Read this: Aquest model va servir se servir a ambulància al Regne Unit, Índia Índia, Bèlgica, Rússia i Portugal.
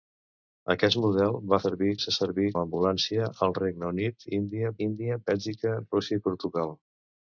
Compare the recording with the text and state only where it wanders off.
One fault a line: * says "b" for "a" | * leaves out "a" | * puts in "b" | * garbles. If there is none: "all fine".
all fine